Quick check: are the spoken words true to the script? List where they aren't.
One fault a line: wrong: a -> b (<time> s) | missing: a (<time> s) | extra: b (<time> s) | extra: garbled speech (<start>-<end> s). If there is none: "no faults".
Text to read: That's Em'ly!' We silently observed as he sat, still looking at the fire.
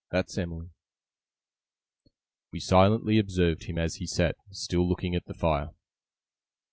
extra: him (3.6 s)